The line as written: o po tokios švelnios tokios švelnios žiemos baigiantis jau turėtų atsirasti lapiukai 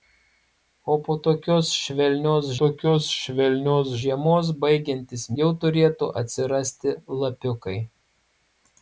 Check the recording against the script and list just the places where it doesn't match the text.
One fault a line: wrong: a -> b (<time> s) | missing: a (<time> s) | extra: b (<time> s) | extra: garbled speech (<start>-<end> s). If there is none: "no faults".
no faults